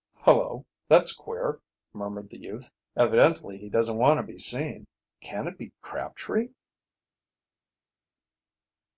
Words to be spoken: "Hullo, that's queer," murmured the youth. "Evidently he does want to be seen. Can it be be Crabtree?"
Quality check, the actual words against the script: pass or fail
fail